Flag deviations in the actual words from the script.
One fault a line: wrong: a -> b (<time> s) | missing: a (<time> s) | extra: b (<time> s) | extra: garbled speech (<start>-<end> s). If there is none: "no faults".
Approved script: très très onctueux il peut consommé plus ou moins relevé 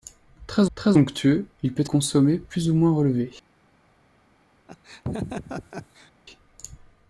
no faults